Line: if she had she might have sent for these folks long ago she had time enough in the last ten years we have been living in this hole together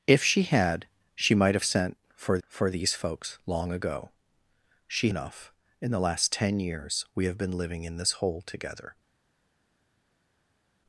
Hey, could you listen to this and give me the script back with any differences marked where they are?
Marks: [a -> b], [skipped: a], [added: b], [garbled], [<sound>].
if she had she might have sent for [added: for] these folks long ago she [skipped: had time] enough in the last ten years we have been living in this hole together